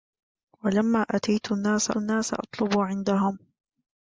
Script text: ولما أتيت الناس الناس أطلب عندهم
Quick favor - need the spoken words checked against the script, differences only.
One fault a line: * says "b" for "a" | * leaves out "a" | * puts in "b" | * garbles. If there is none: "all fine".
all fine